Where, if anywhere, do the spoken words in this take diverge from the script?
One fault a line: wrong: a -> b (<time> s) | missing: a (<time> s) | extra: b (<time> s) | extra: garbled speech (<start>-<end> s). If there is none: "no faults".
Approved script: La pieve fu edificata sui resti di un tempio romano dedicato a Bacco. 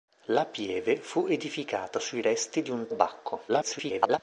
missing: tempio romano dedicato (2.9 s)
extra: garbled speech (3.5-4.2 s)